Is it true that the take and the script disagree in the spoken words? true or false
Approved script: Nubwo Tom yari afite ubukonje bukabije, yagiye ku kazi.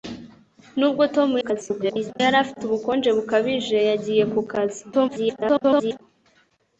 true